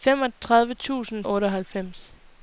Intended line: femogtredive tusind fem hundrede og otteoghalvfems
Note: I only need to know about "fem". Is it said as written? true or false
false